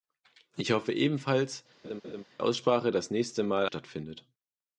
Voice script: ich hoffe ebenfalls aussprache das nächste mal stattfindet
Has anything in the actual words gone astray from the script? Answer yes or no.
no